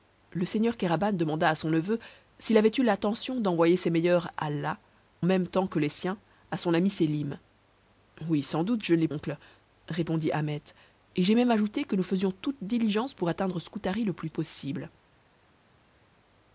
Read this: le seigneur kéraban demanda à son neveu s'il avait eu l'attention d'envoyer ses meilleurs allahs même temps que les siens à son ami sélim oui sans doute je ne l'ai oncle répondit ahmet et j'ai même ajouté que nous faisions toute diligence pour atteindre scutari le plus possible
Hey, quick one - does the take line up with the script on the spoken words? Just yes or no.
yes